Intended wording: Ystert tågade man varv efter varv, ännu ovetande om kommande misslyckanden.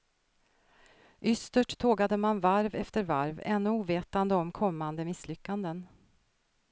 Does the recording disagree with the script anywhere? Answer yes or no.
no